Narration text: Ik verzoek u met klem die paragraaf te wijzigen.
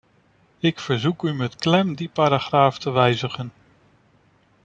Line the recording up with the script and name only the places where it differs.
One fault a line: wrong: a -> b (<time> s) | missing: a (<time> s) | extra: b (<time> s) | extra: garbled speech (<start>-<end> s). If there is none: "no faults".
no faults